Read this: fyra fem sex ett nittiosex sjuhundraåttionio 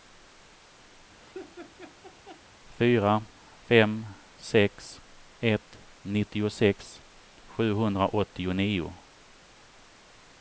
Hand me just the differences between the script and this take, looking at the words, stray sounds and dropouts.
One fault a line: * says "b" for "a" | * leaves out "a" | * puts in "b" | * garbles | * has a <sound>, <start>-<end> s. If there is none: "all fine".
* has a laugh, 1.2-2.4 s